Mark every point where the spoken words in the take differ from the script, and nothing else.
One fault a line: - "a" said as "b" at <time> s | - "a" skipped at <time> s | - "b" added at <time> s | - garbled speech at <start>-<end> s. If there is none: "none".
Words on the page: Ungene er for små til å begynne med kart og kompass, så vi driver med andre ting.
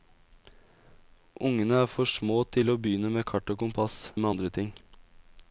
- "så vi driver" skipped at 4.1 s